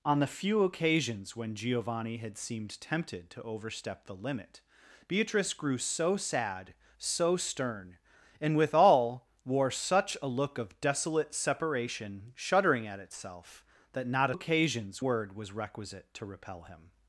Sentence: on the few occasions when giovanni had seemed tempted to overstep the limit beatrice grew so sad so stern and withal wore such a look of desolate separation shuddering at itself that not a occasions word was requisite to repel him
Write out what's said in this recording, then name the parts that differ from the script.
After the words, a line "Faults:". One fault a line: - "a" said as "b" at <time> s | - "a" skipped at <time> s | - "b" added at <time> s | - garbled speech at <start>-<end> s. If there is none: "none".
on the few occasions when giovanni had seemed tempted to overstep the limit beatrice grew so sad so stern and withal wore such a look of desolate separation shuddering at itself that not a occasions word was requisite to repel him
Faults:
none